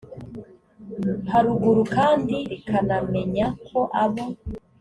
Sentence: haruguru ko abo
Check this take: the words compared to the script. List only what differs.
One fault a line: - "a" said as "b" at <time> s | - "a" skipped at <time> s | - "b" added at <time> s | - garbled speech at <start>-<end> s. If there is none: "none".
- "kandi rikanamenya" added at 1.9 s